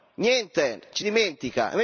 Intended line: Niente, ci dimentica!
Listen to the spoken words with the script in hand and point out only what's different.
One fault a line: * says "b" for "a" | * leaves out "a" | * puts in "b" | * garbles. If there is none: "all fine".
all fine